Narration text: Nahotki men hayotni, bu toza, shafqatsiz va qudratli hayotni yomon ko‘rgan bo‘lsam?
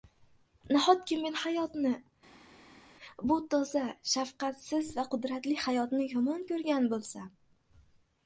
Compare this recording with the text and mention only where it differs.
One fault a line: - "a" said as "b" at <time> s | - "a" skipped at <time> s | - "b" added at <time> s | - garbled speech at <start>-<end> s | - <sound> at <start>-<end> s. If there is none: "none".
none